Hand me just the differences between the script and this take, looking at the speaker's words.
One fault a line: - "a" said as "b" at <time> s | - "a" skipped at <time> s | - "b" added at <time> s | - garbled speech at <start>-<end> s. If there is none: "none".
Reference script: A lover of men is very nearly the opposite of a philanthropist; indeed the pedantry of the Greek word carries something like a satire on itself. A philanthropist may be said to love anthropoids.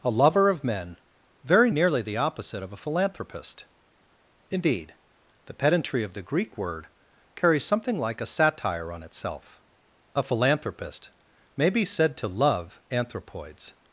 - "is" skipped at 1.0 s